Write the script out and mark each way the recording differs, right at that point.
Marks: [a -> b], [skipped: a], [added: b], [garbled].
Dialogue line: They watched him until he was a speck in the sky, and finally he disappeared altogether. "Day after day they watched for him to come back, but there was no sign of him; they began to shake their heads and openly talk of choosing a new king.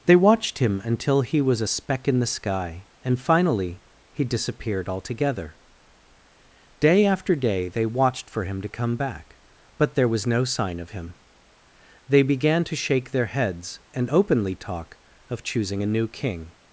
They watched him until he was a speck in the sky, and finally he disappeared altogether. "Day after day they watched for him to come back, but there was no sign of him; they began to shake their heads and openly talk of choosing a new king.